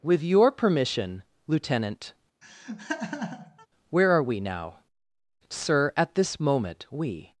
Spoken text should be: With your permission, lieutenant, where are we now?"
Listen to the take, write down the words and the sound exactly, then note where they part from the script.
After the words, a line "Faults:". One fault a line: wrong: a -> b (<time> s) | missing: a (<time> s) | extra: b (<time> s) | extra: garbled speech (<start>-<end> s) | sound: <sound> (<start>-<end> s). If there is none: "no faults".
With your permission, lieutenant, where are we now?" "Sir, at this moment we
Faults:
sound: laugh (2.4-3.7 s)
extra: Sir at this moment we (5.5 s)